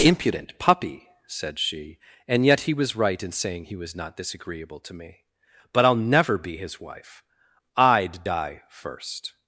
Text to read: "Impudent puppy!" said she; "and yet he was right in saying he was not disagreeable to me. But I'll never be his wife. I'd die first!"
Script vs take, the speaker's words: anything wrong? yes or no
no